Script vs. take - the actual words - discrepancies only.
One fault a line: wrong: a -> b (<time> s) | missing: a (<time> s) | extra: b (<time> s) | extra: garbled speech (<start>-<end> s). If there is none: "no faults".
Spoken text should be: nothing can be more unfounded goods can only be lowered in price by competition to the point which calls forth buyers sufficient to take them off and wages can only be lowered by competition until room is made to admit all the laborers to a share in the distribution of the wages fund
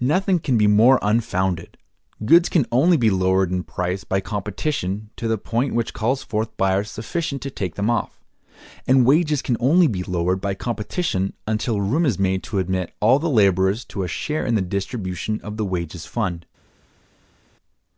no faults